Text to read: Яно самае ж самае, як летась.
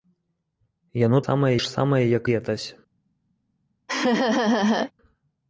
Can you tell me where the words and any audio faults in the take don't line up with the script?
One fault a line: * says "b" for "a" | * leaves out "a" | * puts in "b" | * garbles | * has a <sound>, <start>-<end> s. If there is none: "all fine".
* has a laugh, 3.9-4.9 s